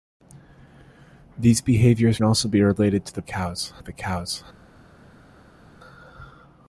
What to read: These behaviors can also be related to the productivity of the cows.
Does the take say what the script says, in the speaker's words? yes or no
no